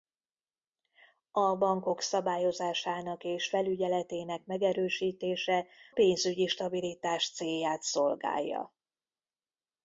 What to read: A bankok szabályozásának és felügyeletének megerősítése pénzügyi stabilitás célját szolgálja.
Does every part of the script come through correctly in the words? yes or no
yes